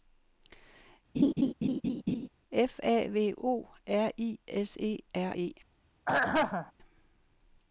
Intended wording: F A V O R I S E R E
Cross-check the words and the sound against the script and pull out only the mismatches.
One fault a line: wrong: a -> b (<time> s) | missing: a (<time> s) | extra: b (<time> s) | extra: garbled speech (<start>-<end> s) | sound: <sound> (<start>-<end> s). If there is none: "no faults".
sound: laugh (1.1-2.3 s)
sound: throat clearing (6.1-6.7 s)